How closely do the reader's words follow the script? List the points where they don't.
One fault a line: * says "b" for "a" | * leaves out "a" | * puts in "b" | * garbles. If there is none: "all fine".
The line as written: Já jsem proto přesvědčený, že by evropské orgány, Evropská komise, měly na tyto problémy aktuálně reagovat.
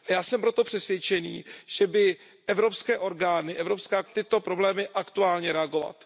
* leaves out "komise měly na"